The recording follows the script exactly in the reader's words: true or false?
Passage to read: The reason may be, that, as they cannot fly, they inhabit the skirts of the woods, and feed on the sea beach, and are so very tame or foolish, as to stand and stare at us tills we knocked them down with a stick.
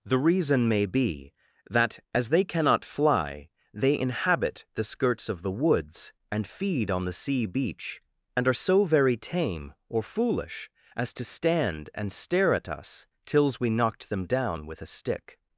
true